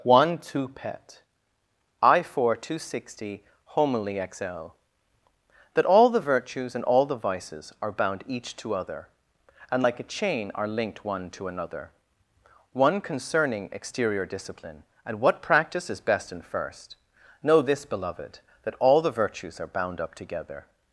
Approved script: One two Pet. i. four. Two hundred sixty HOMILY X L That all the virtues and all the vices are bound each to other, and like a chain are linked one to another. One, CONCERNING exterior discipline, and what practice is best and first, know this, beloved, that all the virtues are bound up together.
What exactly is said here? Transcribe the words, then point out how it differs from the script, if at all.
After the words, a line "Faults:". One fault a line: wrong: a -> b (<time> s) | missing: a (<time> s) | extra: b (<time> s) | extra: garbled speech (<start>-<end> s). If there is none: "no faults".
One two Pet. i. four. Two sixty HOMILY X L That all the virtues and all the vices are bound each to other, and like a chain are linked one to another. One, CONCERNING exterior discipline, and what practice is best and first, know this, beloved, that all the virtues are bound up together.
Faults:
missing: hundred (2.8 s)